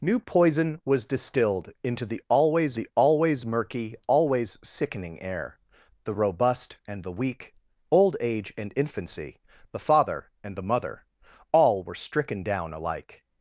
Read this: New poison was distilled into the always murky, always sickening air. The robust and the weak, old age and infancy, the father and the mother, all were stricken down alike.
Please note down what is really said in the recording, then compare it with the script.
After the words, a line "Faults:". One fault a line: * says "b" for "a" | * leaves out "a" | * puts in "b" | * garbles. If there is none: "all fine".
New poison was distilled into the always the always murky, always sickening air. The robust and the weak, old age and infancy, the father and the mother, all were stricken down alike.
Faults:
* puts in "the always"